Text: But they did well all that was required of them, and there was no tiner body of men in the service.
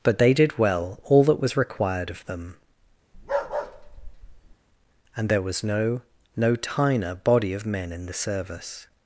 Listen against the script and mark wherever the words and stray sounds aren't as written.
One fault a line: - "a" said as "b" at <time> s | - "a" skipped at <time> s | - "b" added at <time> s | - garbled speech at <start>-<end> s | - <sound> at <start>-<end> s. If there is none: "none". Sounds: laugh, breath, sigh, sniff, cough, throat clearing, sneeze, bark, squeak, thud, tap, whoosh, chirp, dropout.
- bark at 3.1-4.6 s
- "no" added at 6.4 s